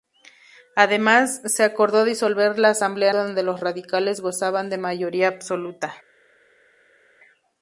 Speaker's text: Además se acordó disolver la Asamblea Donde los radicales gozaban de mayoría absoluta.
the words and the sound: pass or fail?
pass